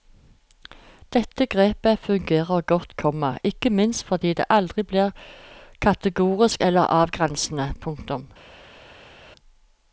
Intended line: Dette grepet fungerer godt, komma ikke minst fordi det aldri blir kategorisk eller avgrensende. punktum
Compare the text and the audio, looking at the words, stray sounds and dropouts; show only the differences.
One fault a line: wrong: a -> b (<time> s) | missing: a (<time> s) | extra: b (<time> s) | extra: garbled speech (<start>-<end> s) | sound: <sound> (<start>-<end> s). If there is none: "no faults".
no faults